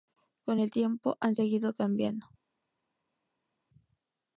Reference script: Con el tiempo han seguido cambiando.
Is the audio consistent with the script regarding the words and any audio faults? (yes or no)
yes